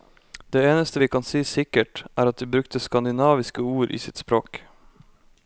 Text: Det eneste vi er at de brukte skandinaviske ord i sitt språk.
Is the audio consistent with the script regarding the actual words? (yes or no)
no